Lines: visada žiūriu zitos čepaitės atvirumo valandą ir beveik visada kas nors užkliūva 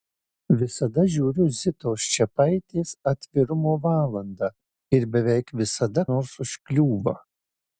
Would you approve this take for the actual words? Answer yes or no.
no